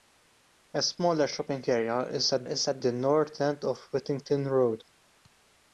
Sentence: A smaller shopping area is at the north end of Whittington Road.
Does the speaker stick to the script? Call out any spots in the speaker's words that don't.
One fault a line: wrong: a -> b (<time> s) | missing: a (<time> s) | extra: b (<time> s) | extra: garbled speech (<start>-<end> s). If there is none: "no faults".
extra: is at (2.4 s)